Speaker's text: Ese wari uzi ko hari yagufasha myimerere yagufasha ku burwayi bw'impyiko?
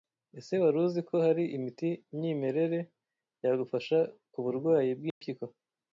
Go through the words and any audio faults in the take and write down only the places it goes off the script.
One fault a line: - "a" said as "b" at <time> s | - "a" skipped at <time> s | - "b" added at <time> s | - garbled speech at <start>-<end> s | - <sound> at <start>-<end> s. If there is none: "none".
- "yagufasha" said as "imiti" at 1.6 s
- dropout at 5.1-5.2 s